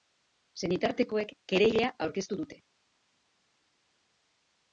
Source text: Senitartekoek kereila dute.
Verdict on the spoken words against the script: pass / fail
fail